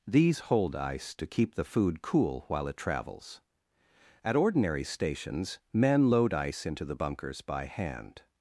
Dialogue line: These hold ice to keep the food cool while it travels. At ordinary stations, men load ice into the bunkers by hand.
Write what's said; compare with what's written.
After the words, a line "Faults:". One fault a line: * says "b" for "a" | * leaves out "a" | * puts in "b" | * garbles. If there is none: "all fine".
These hold ice to keep the food cool while it travels. At ordinary stations, men load ice into the bunkers by hand.
Faults:
all fine